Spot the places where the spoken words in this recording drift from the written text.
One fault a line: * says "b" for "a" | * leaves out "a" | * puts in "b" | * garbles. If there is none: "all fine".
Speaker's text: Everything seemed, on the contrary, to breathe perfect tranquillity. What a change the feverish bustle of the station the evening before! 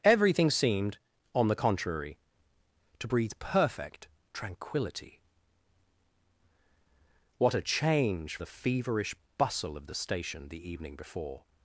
all fine